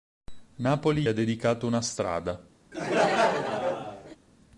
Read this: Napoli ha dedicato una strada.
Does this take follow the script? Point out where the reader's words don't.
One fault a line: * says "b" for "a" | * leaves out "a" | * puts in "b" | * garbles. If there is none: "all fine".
all fine